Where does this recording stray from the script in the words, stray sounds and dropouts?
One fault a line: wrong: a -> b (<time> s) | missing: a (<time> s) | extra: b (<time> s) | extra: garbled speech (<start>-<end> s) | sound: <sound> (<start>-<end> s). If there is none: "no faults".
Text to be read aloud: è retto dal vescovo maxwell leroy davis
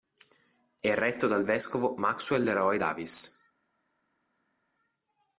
no faults